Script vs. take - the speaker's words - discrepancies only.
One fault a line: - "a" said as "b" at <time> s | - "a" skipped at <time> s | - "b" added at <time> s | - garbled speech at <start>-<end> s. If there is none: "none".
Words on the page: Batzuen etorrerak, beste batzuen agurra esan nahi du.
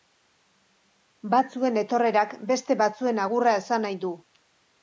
none